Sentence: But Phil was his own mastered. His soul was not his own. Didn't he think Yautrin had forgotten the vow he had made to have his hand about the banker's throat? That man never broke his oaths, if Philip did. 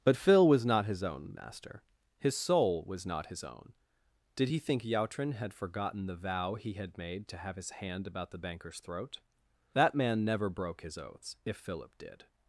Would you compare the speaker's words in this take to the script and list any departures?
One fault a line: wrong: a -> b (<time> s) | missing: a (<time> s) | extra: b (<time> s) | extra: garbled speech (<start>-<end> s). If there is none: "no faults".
extra: not (0.7 s)
wrong: mastered -> master (1.4 s)
wrong: Didn't -> Did (4.3 s)